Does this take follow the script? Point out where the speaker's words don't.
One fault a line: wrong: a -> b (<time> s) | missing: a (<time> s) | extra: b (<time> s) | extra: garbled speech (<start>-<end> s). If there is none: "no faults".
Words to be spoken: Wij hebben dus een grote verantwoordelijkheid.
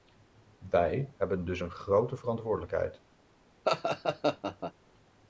no faults